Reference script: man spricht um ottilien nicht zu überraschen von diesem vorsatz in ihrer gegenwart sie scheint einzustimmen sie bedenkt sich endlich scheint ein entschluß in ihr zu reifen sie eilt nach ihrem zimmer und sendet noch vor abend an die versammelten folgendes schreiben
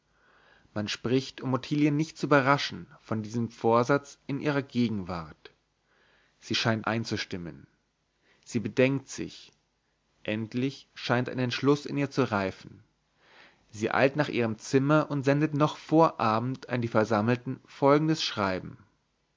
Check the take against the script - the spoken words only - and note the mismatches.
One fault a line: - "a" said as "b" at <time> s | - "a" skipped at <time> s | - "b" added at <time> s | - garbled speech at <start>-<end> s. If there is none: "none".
none